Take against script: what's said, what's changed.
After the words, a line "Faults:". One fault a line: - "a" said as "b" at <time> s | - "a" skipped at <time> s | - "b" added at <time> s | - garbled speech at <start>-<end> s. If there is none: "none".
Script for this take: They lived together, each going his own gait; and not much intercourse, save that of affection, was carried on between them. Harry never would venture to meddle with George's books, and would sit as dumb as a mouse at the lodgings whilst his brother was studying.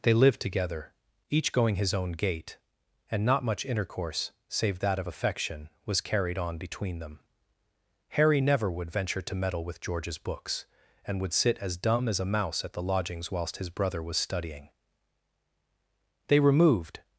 They lived together, each going his own gait; and not much intercourse, save that of affection, was carried on between them. Harry never would venture to meddle with George's books, and would sit as dumb as a mouse at the lodgings whilst his brother was studying. They removed
Faults:
- "They removed" added at 16.3 s